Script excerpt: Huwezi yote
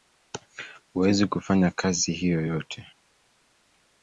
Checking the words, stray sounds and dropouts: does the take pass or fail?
fail